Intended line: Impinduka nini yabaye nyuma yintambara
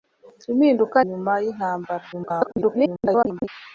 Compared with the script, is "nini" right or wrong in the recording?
wrong